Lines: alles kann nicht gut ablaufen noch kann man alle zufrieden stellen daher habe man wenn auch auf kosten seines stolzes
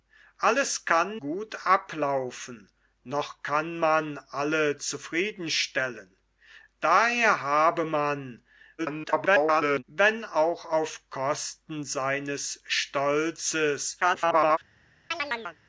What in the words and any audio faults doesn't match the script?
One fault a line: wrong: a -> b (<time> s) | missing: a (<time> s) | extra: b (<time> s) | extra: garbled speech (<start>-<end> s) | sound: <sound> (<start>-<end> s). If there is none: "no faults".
missing: nicht (1.2 s)
extra: garbled speech (8.8-9.8 s)
extra: garbled speech (14.0-14.6 s)
sound: chirp (15.1-15.6 s)